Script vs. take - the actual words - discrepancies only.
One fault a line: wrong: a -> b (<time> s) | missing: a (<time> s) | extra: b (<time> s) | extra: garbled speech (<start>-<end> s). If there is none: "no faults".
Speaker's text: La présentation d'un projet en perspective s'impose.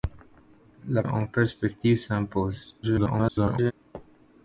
missing: présentation d'un projet (1.0 s)
extra: garbled speech (2.8-3.7 s)